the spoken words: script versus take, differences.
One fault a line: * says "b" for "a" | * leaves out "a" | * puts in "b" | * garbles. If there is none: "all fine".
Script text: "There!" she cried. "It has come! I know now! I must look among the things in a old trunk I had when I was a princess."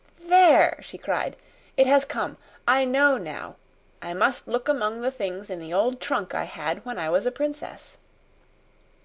* says "the" for "a"